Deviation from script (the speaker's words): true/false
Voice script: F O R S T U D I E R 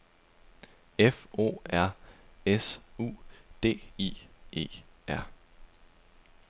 true